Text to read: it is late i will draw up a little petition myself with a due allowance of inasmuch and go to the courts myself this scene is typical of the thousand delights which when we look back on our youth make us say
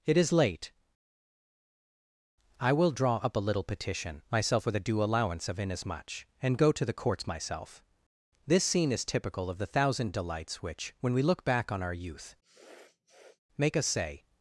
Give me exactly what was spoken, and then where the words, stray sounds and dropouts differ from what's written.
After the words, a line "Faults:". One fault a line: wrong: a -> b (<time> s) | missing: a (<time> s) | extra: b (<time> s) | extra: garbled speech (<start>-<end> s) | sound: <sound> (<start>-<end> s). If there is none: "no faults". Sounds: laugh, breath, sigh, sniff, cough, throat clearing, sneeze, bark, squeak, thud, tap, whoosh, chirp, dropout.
it is late i will draw up a little petition myself with a due allowance of inasmuch and go to the courts myself this scene is typical of the thousand delights which when we look back on our youth make us say
Faults:
sound: sniff (12.4-13.4 s)